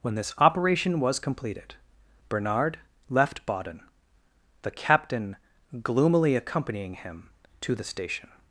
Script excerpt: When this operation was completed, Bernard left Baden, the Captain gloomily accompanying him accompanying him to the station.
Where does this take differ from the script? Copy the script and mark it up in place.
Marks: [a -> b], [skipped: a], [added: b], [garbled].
When this operation was completed, Bernard left Baden, the Captain gloomily accompanying him [skipped: accompanying him] to the station.